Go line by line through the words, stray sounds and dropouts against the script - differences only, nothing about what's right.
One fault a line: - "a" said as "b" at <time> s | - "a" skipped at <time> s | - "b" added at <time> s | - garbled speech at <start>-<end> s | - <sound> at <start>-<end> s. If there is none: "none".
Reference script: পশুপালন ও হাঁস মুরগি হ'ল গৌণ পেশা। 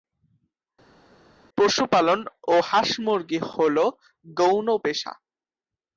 none